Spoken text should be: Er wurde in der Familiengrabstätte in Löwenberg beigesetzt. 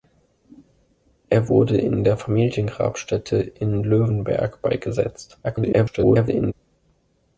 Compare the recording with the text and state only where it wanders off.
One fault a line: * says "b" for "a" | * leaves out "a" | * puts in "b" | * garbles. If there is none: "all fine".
* garbles